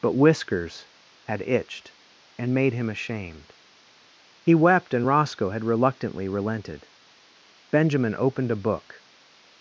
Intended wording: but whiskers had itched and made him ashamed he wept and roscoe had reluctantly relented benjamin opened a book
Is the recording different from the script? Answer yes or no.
no